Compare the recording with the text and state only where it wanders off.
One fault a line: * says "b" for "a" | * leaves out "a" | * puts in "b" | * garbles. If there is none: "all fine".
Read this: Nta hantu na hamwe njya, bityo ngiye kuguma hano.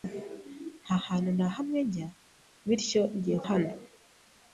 * leaves out "kuguma"